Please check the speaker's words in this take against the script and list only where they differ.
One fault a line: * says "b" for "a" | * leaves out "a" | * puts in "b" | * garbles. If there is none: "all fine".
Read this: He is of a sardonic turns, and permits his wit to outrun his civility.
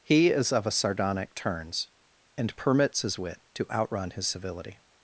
all fine